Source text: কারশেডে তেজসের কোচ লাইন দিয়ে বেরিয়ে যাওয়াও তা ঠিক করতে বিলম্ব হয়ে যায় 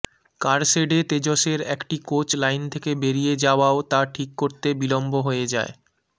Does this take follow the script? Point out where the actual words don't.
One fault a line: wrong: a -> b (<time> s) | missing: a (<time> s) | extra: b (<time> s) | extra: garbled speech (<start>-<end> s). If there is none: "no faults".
extra: একটি (1.8 s)
wrong: দিয়ে -> থেকে (2.7 s)